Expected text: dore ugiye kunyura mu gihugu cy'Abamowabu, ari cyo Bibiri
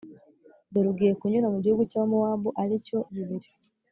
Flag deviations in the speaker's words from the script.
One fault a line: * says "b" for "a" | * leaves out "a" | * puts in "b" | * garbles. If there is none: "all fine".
all fine